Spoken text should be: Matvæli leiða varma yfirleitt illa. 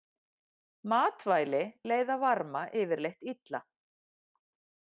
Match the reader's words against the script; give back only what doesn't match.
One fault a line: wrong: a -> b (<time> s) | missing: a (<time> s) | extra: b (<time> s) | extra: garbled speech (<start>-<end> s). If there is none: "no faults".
no faults